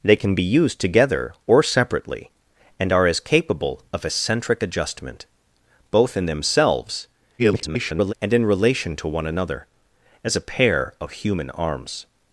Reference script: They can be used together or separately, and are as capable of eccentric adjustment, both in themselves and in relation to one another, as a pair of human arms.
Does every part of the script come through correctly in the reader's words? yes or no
no